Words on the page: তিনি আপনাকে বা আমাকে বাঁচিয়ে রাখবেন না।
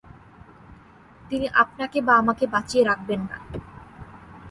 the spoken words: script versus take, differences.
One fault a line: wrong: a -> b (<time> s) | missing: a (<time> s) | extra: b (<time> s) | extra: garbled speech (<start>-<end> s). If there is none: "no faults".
no faults